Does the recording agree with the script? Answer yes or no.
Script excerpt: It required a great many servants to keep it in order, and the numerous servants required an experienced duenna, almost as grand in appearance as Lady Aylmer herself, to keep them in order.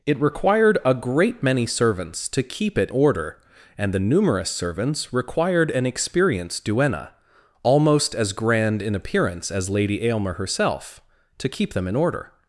no